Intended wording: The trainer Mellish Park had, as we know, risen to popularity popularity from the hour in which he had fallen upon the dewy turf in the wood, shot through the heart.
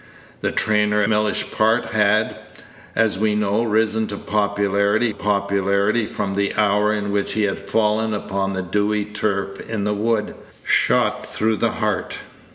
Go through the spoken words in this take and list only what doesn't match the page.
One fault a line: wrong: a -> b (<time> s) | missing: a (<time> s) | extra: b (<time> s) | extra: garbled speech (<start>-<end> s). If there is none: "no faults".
no faults